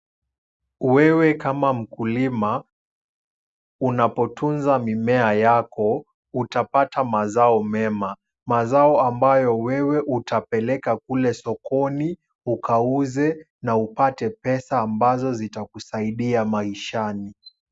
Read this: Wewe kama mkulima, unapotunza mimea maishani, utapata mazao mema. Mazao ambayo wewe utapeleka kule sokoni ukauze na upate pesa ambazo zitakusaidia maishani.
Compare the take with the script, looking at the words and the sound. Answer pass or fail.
fail